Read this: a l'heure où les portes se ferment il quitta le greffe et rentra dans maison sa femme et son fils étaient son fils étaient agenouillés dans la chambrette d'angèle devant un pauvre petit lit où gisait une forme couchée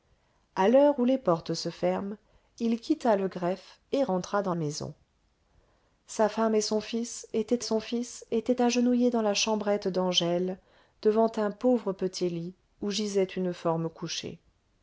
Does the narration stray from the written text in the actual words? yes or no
no